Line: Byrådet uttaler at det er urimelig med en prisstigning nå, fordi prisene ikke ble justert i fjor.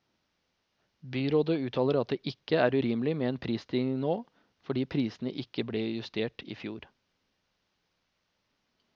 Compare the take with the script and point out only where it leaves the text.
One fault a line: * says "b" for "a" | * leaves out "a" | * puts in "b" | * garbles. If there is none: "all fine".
* puts in "ikke"